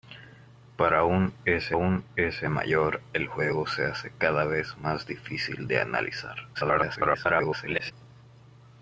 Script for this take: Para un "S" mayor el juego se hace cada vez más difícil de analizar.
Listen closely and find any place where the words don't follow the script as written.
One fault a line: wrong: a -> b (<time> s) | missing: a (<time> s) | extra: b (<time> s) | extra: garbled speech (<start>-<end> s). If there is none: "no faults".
extra: un S (1.7 s)
extra: garbled speech (6.5-7.9 s)